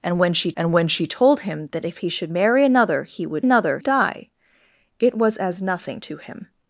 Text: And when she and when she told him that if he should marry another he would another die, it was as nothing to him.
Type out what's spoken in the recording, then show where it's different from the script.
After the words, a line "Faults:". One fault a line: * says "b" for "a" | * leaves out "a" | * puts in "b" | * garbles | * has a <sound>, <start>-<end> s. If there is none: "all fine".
And when she and when she told him that if he should marry another he would another die, it was as nothing to him.
Faults:
all fine